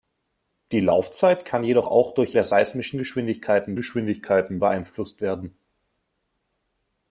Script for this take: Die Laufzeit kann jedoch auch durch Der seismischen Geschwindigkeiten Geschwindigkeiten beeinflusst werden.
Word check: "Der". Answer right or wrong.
right